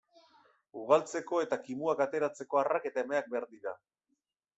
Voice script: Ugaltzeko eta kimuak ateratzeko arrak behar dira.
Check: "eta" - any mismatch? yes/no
no